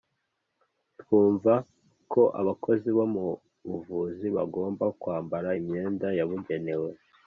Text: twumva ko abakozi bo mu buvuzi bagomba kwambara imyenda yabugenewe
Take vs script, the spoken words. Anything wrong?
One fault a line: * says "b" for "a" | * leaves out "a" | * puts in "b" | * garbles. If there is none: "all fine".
all fine